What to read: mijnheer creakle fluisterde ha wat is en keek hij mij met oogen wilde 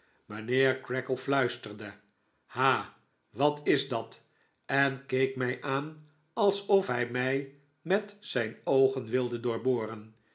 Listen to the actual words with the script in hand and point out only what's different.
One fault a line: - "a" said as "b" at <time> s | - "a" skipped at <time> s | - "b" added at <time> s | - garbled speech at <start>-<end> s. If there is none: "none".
- "dat" added at 3.9 s
- "mij aan alsof" added at 5.3 s
- "zijn" added at 8.2 s